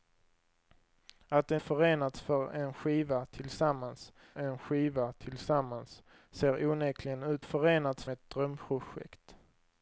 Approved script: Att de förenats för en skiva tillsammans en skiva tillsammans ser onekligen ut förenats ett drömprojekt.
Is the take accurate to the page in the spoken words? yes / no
yes